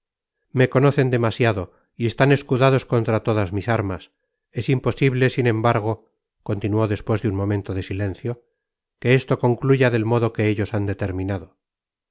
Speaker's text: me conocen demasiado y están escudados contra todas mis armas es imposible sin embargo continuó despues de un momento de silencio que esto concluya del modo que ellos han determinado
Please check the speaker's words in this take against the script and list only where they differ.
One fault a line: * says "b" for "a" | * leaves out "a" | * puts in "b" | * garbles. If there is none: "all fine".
all fine